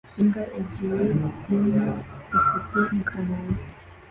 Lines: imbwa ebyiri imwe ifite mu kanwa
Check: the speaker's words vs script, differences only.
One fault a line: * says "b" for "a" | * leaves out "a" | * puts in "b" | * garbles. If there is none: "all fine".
all fine